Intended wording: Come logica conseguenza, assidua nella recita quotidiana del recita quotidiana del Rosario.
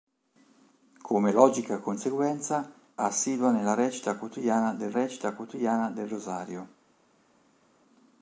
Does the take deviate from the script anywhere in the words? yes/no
no